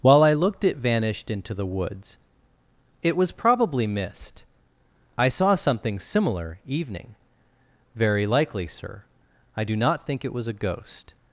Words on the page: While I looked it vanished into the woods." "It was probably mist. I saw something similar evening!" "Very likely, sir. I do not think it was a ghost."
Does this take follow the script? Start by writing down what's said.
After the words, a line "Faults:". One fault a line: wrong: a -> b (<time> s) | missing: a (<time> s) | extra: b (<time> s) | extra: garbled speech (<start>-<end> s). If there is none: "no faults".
While I looked it vanished into the woods." "It was probably mist. I saw something similar evening!" "Very likely, sir. I do not think it was a ghost."
Faults:
no faults